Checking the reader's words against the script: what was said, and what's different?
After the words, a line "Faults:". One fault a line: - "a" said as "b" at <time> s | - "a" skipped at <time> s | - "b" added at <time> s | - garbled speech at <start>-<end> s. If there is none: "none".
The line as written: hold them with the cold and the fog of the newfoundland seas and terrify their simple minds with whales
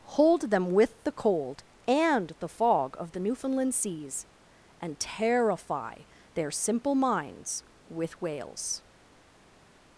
hold them with the cold and the fog of the newfoundland seas and terrify their simple minds with whales
Faults:
none